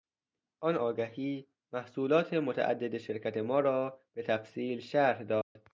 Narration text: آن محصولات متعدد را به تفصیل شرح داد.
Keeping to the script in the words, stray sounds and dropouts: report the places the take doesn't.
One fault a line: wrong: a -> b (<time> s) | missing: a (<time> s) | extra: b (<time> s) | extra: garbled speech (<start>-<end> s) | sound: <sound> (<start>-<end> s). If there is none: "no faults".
extra: آگهی (0.8 s)
extra: شرکت ما (3.0 s)
sound: dropout (5.4-5.6 s)